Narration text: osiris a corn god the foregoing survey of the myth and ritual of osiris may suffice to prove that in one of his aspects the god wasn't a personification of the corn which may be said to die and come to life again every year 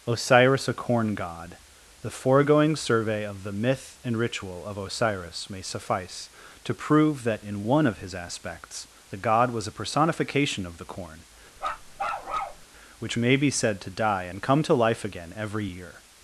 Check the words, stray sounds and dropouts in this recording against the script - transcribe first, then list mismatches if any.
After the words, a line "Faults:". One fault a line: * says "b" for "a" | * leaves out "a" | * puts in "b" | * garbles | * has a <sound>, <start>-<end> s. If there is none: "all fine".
osiris a corn god the foregoing survey of the myth and ritual of osiris may suffice to prove that in one of his aspects the god was a personification of the corn which may be said to die and come to life again every year
Faults:
* says "was" for "wasn't"
* has a bark, 11.6-12.7 s